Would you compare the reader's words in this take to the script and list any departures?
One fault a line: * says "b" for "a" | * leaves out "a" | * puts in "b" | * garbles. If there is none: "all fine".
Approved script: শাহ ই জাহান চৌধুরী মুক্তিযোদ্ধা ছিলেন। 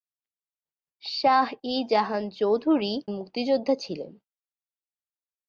all fine